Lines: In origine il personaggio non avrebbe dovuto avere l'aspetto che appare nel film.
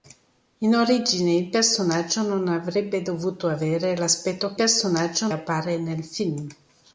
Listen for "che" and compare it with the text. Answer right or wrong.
wrong